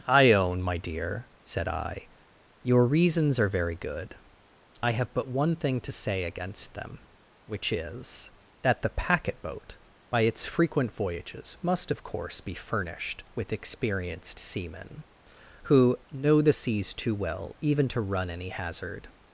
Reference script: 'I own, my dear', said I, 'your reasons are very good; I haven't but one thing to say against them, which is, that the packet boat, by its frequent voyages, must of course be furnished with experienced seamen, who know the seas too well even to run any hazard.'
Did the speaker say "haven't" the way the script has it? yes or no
no